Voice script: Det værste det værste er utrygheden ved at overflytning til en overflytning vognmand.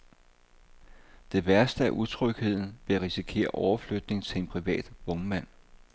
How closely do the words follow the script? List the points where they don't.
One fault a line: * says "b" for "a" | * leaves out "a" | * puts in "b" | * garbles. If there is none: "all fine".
* leaves out "det værste"
* puts in "risikere"
* says "privat" for "overflytning"